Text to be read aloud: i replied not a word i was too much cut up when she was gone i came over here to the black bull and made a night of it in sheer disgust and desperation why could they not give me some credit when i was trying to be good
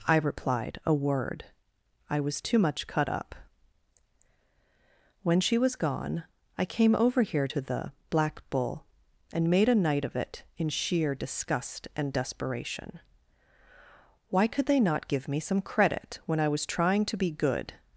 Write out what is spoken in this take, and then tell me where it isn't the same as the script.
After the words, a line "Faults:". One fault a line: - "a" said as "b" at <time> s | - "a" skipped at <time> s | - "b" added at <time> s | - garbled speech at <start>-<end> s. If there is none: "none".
i replied a word i was too much cut up when she was gone i came over here to the black bull and made a night of it in sheer disgust and desperation why could they not give me some credit when i was trying to be good
Faults:
- "not" skipped at 0.8 s